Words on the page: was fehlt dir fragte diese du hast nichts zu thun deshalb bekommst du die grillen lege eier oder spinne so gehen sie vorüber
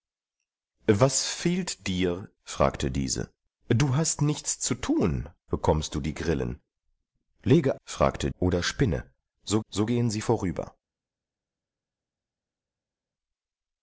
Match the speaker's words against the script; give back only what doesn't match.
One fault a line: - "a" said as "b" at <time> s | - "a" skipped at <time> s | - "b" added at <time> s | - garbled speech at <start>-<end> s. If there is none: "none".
- "deshalb" skipped at 5.3 s
- "eier" said as "fragte" at 7.8 s
- "so" added at 9.7 s